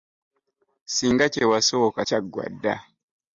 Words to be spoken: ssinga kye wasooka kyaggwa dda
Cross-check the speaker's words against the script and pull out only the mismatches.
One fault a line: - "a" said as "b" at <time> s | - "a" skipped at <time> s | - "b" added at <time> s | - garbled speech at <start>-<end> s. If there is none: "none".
none